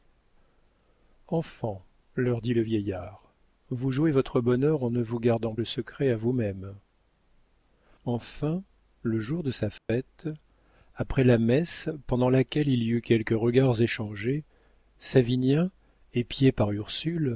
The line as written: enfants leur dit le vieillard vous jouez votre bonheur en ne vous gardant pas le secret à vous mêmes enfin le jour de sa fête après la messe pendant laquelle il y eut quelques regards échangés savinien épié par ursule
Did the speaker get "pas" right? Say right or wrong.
wrong